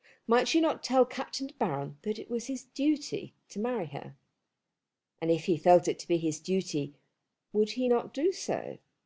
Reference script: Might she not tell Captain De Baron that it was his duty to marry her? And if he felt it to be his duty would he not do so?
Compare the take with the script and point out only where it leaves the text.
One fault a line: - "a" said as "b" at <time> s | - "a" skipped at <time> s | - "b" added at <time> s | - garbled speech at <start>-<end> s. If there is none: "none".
none